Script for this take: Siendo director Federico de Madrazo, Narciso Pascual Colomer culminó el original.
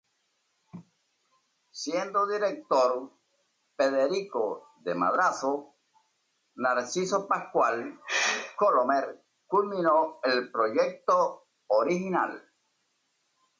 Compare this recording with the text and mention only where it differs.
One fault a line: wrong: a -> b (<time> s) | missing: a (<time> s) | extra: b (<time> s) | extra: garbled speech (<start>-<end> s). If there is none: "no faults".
extra: proyecto (10.5 s)